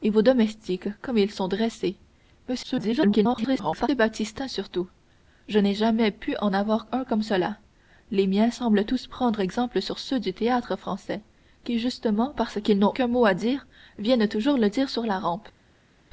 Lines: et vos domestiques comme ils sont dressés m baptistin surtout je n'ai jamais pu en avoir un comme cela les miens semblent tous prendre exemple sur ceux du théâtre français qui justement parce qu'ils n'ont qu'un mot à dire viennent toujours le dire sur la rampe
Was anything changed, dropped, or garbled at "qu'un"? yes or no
no